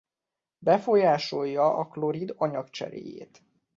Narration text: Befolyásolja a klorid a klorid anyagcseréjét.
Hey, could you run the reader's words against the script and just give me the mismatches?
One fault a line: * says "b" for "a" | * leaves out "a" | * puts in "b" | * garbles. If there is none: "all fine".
* leaves out "a klorid"